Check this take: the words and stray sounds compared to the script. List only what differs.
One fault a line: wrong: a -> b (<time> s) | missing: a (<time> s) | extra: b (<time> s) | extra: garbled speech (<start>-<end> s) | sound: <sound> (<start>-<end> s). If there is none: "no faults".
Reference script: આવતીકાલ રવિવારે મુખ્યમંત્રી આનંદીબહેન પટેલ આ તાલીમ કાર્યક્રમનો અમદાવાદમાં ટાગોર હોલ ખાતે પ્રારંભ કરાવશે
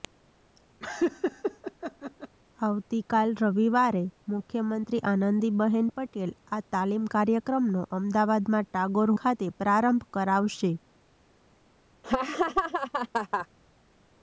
sound: laugh (0.8-2.4 s)
missing: હોલ (9.1 s)
sound: laugh (12.0-13.5 s)